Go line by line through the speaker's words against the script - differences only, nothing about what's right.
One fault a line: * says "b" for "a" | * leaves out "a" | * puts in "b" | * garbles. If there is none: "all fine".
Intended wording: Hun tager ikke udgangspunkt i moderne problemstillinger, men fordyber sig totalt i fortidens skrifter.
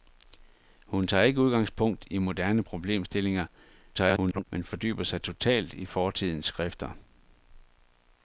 * garbles